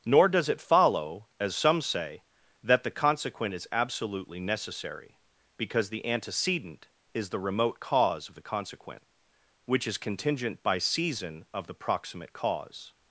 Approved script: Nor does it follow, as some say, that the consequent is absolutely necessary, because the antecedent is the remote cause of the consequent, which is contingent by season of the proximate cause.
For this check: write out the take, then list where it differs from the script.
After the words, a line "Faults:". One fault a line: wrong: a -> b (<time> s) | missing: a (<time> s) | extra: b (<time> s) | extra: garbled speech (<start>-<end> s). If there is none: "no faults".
Nor does it follow, as some say, that the consequent is absolutely necessary, because the antecedent is the remote cause of the consequent, which is contingent by season of the proximate cause.
Faults:
no faults